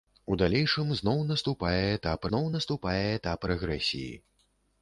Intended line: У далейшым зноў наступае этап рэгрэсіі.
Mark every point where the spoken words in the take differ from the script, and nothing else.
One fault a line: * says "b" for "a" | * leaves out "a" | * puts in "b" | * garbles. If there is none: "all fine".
* puts in "зноў наступае этап"